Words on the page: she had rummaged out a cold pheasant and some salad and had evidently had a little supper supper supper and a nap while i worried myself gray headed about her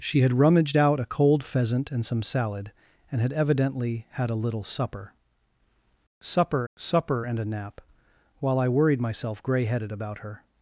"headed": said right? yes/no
yes